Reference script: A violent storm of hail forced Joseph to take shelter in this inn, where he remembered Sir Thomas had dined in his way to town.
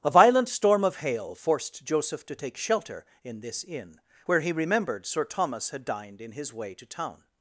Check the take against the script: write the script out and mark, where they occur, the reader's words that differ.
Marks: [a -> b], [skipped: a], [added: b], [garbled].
A violent storm of hail forced Joseph to take shelter in this inn, where he remembered Sir Thomas had dined in his way to town.